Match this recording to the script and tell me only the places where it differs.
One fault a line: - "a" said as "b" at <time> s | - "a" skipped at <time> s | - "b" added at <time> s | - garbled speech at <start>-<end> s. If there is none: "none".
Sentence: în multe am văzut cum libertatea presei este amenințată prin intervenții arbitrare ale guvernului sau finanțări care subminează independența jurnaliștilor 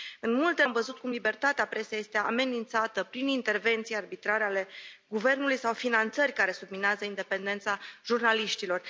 none